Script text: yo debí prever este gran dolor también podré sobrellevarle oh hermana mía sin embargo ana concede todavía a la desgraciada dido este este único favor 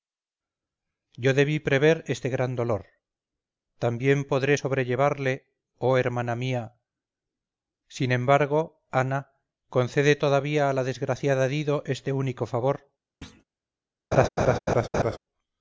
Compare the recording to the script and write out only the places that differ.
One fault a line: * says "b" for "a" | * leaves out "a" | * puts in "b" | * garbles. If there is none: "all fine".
* leaves out "este"